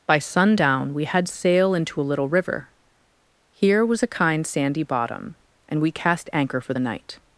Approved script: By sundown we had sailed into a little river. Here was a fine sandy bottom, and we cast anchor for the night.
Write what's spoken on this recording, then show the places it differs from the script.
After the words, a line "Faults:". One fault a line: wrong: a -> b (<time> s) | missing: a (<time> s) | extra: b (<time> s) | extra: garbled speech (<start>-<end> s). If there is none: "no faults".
By sundown we had sail into a little river. Here was a kind sandy bottom, and we cast anchor for the night.
Faults:
wrong: sailed -> sail (1.3 s)
wrong: fine -> kind (4.1 s)